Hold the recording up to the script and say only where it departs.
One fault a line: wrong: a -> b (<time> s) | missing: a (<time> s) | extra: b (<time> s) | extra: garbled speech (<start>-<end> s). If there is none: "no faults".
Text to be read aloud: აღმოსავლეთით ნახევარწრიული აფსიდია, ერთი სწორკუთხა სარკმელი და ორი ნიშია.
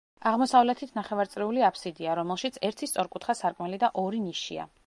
extra: რომელშიც (2.2 s)